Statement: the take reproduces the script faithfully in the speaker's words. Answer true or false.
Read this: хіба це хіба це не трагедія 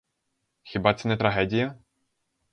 false